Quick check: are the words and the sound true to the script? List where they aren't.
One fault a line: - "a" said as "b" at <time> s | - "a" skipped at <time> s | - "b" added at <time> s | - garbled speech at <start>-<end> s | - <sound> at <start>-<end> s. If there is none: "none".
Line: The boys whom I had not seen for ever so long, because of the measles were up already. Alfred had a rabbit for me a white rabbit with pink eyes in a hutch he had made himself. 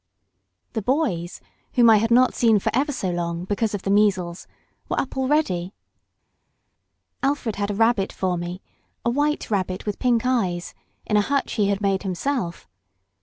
none